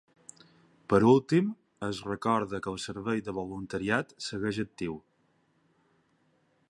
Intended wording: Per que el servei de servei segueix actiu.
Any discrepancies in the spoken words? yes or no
yes